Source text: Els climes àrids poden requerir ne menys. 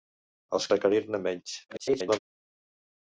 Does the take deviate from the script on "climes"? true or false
true